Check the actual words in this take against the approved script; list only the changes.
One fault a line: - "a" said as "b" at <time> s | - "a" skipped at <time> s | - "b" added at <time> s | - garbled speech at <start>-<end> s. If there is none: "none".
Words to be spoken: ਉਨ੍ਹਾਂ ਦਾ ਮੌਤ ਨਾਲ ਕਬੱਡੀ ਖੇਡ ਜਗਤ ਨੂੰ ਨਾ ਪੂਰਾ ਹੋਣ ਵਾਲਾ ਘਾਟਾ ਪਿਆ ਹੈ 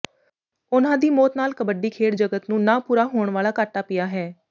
- "ਦਾ" said as "ਦੀ" at 1.0 s